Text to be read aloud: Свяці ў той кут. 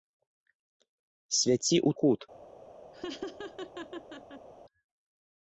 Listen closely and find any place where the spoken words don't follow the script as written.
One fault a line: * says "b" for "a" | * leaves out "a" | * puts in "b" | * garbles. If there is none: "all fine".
* leaves out "той"